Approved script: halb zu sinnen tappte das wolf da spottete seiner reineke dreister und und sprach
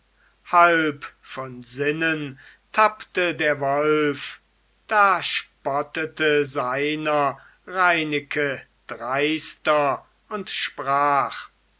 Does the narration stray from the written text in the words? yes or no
yes